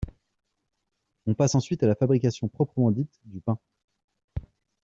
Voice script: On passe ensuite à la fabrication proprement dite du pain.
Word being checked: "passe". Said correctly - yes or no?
yes